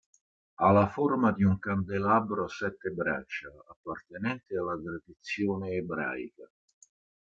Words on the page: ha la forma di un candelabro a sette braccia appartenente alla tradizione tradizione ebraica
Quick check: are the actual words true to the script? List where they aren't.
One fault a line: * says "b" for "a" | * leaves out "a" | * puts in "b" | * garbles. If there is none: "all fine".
* leaves out "tradizione"